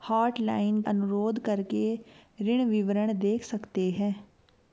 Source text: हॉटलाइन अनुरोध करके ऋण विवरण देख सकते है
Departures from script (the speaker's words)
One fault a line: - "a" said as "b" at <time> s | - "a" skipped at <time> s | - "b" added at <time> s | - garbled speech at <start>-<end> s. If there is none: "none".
none